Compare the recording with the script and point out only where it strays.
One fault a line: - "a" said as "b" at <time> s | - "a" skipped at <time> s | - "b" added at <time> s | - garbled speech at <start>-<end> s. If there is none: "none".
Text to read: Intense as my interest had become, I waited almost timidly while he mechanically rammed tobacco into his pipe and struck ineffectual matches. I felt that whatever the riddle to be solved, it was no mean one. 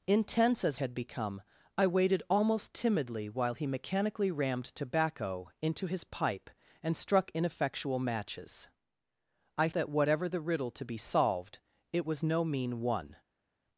- "my interest" skipped at 0.8 s
- "felt" skipped at 9.7 s